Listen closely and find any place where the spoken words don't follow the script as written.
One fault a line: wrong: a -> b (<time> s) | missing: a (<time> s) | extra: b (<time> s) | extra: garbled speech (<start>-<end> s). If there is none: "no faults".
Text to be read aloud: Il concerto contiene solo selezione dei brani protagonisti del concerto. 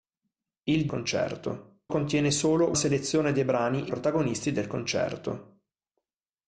no faults